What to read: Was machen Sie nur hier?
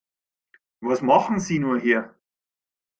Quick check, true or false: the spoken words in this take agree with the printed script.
true